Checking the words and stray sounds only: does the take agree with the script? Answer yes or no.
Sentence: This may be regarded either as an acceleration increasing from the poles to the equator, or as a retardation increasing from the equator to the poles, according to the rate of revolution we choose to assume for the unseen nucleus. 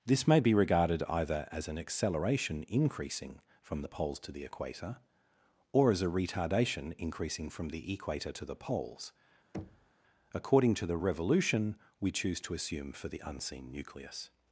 no